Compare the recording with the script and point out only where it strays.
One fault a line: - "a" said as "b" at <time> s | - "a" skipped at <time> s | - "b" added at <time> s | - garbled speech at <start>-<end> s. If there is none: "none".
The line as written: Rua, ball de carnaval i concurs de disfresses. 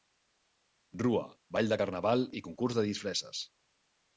none